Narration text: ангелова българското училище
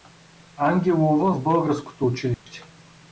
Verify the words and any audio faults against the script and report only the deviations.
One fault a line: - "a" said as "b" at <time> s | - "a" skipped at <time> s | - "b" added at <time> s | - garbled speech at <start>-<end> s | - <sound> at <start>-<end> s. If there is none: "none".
- "в" added at 1.3 s
- dropout at 2.3-2.5 s